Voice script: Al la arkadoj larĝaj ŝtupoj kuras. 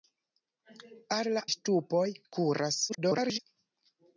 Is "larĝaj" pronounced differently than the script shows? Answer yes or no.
yes